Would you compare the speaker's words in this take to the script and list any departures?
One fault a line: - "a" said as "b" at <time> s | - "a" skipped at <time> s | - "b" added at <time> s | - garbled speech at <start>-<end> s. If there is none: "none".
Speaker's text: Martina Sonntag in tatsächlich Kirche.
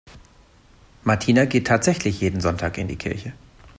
- "geht tatsächlich jeden" added at 1.4 s
- "tatsächlich" said as "die" at 2.9 s